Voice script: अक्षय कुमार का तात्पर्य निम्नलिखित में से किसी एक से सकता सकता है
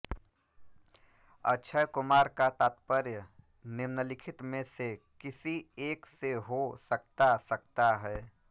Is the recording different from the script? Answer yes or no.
yes